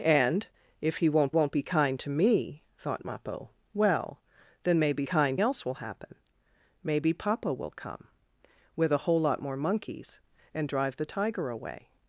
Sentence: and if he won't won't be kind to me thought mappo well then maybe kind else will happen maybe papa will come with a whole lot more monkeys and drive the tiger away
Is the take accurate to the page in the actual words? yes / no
yes